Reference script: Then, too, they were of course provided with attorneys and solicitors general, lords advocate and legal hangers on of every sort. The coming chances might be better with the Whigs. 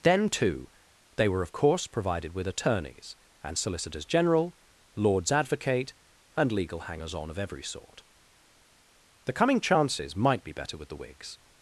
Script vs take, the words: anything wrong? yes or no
no